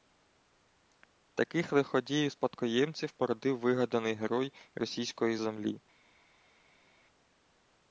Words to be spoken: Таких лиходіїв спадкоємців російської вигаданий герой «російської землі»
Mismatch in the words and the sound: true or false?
true